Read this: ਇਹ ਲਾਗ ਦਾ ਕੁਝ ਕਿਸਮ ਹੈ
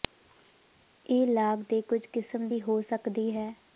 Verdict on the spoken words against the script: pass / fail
fail